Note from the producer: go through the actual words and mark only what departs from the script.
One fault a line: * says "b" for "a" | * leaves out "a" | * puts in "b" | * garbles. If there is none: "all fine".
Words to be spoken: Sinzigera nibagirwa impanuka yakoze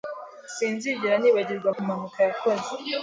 all fine